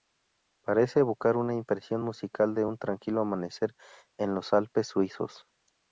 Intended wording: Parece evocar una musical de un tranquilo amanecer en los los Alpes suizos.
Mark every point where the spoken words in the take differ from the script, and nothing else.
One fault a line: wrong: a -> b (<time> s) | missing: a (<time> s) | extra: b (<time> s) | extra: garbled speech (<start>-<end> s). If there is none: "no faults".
extra: impresión (1.5 s)
missing: los (4.5 s)